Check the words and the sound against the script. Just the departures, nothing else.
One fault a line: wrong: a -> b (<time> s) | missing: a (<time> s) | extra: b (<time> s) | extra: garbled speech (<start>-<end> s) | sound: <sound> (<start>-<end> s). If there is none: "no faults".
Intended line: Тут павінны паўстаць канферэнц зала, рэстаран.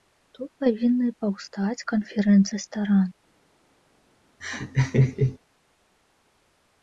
missing: зала (2.5 s)
sound: laugh (4.4-5.4 s)